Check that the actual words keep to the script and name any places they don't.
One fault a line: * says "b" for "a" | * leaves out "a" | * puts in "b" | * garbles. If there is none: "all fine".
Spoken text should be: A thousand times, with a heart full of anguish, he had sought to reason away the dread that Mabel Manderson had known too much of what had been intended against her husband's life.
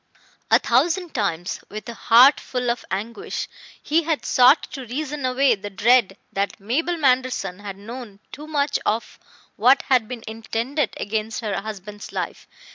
all fine